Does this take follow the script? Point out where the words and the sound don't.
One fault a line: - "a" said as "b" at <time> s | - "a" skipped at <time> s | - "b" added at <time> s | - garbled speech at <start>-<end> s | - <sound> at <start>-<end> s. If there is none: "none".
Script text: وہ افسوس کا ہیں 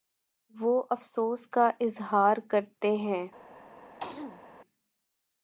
- "اظہارکرتے" added at 1.8 s
- throat clearing at 4.0-4.4 s